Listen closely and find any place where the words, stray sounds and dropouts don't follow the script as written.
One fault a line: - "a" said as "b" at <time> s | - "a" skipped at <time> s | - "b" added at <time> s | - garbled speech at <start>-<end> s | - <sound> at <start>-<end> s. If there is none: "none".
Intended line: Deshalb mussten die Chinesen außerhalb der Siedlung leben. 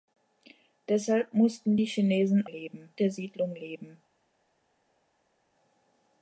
- "außerhalb" said as "leben" at 2.5 s